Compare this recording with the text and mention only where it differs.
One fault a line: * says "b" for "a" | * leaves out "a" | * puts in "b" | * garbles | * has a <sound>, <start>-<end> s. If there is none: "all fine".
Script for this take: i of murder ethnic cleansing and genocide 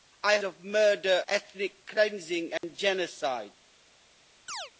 * has a dropout, 2.6-2.6 s
* has a chirp, 4.5-4.7 s